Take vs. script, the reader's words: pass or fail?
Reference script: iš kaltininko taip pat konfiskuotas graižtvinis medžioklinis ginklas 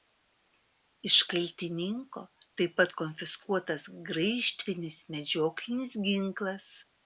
pass